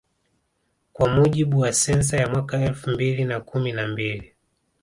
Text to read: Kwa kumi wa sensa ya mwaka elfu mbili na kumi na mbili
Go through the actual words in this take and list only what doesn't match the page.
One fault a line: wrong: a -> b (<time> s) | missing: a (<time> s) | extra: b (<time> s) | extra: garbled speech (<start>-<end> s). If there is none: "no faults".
wrong: kumi -> mujibu (1.1 s)